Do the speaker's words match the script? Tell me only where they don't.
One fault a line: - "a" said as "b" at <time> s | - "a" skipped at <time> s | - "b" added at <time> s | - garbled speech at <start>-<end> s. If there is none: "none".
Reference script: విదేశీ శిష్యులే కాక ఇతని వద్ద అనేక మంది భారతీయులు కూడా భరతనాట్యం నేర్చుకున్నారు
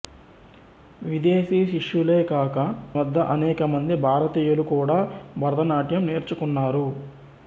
- "ఇతని" skipped at 2.5 s